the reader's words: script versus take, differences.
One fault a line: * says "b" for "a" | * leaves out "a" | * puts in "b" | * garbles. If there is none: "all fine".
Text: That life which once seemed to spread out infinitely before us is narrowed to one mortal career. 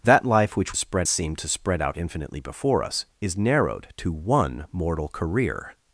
* says "spread" for "once"